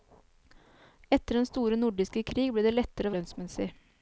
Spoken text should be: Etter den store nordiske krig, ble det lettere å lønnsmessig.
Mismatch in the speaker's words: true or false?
false